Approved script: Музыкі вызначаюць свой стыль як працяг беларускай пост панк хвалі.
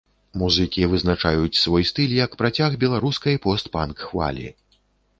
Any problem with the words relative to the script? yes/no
no